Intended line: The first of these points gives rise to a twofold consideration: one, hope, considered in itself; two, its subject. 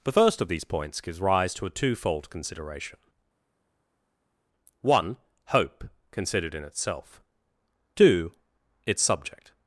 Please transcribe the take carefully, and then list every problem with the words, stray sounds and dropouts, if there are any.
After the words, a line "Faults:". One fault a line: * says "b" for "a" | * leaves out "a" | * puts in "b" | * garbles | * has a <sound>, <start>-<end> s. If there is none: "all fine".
The first of these points gives rise to a twofold consideration: one, hope, considered in itself; two, its subject.
Faults:
all fine